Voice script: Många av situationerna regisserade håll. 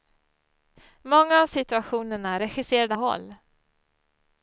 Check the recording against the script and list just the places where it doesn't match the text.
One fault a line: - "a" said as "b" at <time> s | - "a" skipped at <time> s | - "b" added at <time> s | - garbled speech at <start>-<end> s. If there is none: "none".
none